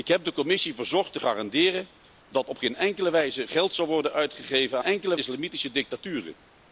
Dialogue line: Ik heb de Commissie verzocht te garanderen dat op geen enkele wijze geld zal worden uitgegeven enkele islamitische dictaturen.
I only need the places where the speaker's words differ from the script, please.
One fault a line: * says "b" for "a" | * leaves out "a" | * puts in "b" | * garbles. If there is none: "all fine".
all fine